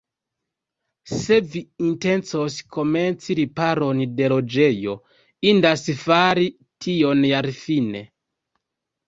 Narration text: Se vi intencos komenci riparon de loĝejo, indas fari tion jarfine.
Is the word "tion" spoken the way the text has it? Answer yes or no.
yes